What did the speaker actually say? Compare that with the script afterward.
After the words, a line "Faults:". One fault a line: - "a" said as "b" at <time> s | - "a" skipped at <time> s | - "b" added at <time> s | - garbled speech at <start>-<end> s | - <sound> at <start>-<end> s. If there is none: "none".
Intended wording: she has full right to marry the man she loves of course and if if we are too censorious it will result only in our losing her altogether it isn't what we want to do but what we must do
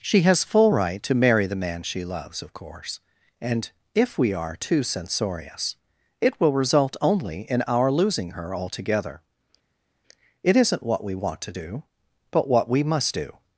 she has full right to marry the man she loves of course and if we are too censorious it will result only in our losing her altogether it isn't what we want to do but what we must do
Faults:
- "if" skipped at 4.2 s